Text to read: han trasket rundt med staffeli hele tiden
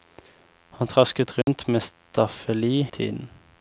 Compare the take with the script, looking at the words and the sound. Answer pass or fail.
fail